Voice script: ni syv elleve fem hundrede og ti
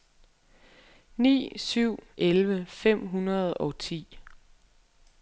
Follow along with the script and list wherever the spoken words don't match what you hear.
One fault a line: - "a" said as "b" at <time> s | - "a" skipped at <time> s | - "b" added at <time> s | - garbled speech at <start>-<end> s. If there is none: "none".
none